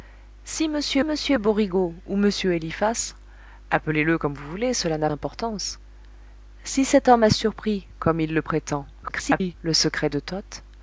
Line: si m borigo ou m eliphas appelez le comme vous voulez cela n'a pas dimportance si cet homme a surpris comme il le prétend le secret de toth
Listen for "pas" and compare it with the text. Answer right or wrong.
wrong